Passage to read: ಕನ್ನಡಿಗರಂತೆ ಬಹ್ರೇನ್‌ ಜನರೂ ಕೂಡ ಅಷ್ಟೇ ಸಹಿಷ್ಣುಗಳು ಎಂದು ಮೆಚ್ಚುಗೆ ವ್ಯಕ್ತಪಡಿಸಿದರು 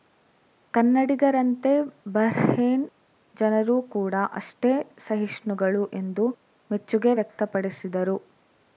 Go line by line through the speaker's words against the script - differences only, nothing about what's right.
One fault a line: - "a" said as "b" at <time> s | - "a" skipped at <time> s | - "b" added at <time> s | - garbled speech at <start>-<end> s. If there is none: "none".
none